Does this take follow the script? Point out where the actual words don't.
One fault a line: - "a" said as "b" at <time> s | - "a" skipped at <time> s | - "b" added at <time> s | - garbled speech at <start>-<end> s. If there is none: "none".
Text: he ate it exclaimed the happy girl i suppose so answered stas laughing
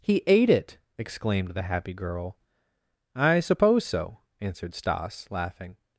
none